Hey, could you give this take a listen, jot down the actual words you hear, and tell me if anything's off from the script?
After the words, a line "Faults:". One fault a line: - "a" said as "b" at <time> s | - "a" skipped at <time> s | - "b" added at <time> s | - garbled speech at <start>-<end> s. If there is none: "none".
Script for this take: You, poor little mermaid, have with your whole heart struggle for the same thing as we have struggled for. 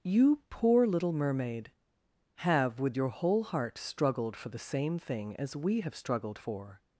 You, poor little mermaid, have with your whole heart struggled for the same thing as we have struggled for.
Faults:
- "struggle" said as "struggled" at 3.8 s